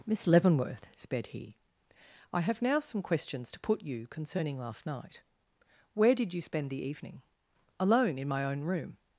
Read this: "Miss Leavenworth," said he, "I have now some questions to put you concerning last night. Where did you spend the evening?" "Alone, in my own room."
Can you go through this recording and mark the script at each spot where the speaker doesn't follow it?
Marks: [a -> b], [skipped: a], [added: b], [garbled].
"Miss Leavenworth," [said -> sped] he, "I have now some questions to put you concerning last night. Where did you spend the evening?" "Alone, in my own room."